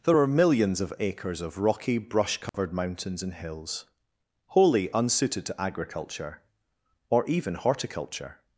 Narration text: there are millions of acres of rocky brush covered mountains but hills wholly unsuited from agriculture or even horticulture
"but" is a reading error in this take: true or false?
true